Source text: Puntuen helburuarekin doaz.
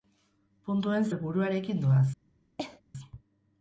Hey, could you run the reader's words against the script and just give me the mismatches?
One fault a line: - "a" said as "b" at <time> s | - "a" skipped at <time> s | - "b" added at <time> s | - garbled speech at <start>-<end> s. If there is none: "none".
none